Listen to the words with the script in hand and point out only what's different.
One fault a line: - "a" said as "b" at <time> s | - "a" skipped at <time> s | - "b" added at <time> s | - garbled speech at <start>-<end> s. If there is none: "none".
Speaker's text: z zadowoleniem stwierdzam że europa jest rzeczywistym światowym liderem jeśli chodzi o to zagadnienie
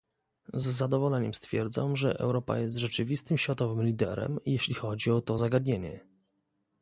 none